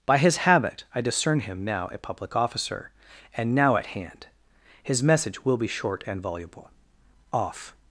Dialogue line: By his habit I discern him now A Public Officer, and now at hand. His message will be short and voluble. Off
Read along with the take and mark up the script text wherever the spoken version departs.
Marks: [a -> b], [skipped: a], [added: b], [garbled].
By his habit I discern him now A Public Officer, and now at hand. His message will be short and voluble. Off